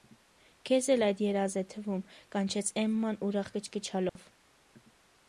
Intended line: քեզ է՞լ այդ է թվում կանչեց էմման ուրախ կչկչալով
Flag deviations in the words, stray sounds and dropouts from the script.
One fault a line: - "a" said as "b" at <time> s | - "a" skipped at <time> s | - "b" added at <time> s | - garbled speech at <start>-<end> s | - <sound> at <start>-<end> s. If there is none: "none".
- "երազ" added at 1.2 s
- dropout at 4.1-4.2 s